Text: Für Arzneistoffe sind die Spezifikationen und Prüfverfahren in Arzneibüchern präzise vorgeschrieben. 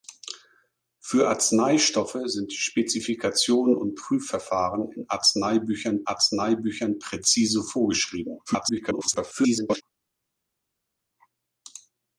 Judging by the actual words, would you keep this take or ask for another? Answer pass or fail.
fail